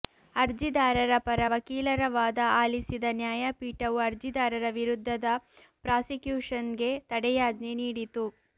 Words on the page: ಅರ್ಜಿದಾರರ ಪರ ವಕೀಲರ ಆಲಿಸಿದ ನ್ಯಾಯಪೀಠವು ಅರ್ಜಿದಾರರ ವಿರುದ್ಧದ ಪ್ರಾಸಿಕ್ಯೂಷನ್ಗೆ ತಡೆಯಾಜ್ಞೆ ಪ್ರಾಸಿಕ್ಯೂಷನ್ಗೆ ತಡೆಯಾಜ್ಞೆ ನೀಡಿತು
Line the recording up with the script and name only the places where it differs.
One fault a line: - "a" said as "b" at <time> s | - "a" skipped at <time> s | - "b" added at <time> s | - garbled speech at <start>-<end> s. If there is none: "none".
- "ವಾದ" added at 2.1 s
- "ಪ್ರಾಸಿಕ್ಯೂಷನ್ಗೆ ತಡೆಯಾಜ್ಞೆ" skipped at 7.7 s